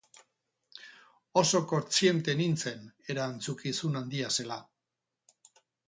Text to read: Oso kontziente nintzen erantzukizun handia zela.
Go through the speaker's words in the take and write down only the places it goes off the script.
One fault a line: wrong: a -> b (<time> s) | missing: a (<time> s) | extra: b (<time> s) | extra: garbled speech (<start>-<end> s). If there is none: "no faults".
no faults